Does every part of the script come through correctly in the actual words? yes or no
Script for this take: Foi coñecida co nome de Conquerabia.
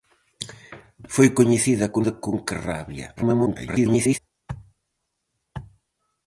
no